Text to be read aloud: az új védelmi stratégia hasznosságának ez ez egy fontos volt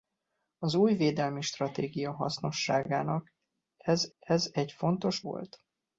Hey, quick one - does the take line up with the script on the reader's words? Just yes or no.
yes